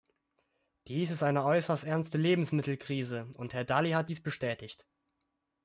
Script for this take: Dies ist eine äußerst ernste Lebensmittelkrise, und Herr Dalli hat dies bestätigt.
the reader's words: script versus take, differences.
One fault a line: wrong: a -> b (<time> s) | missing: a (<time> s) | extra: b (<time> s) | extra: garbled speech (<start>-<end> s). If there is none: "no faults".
no faults